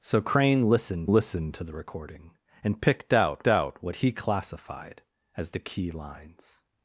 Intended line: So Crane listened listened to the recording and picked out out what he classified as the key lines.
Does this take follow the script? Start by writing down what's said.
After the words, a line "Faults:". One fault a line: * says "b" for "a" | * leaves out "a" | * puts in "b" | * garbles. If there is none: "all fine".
So Crane listened listened to the recording and picked out out what he classified as the key lines.
Faults:
all fine